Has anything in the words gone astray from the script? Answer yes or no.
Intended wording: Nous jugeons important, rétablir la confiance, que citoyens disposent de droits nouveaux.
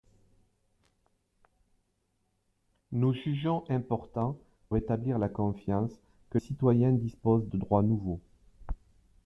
no